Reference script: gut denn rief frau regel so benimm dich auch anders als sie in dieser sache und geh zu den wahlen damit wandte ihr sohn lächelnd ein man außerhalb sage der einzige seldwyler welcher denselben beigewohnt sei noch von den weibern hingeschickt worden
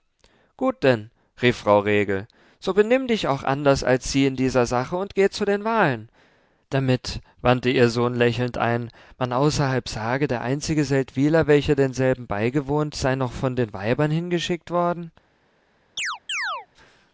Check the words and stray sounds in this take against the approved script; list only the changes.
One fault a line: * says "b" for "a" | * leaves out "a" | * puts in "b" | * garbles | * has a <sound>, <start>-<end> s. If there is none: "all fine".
* has a chirp, 16.0-16.7 s